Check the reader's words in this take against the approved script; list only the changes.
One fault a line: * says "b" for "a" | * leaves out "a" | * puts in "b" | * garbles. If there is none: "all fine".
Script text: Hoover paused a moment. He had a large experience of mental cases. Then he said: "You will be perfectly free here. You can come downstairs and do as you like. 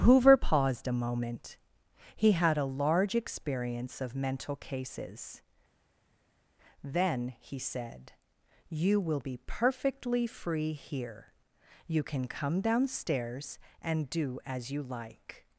all fine